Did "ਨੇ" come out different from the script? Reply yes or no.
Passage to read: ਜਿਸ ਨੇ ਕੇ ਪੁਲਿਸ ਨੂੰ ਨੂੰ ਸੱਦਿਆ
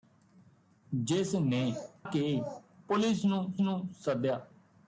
no